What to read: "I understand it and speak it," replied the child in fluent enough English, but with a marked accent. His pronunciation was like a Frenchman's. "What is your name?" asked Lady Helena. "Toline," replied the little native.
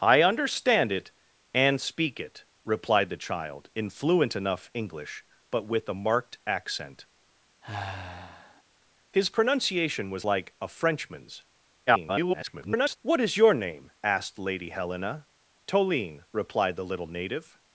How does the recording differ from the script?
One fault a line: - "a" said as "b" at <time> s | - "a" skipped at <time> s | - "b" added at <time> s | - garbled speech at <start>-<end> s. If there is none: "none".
- garbled speech at 11.9-13.0 s